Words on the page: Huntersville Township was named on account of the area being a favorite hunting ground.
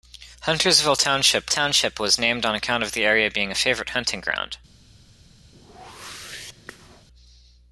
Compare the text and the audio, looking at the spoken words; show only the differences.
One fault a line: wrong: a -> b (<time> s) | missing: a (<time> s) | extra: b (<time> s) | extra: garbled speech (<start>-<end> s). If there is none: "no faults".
extra: Township (1.5 s)